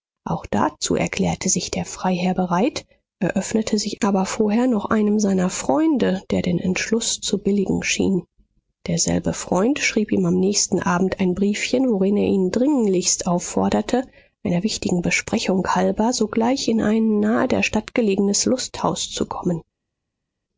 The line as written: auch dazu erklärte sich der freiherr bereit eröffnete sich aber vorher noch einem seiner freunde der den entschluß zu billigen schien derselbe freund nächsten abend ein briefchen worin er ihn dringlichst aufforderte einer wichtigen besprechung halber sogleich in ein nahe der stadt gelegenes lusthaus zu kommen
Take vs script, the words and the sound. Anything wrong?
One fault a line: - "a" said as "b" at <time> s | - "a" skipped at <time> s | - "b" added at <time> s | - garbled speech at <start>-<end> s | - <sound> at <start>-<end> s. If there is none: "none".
- "schrieb ihm am" added at 9.8 s